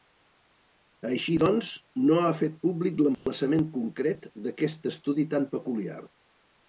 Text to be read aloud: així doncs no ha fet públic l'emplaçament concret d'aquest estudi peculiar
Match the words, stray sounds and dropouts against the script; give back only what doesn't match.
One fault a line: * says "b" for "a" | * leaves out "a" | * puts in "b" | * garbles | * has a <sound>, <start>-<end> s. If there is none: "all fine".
* has a dropout, 3.1-3.3 s
* puts in "tan"